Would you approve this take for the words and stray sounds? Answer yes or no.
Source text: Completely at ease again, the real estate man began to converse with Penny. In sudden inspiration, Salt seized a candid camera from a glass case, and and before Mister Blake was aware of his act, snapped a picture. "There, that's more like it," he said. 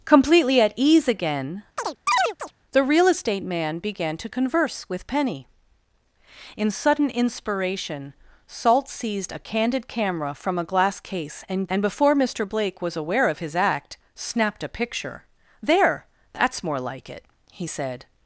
no